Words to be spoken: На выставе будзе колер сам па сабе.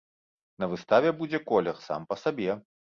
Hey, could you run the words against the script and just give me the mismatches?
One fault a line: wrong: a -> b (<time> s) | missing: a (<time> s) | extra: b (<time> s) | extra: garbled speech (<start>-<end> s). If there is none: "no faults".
no faults